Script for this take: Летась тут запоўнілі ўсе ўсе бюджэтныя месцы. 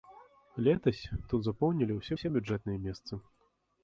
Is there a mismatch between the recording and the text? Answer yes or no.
no